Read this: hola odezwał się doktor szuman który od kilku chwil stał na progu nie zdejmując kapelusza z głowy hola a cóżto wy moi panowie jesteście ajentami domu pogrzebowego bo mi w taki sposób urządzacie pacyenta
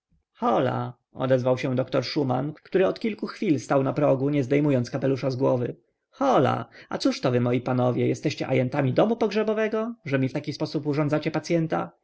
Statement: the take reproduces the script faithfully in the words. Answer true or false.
false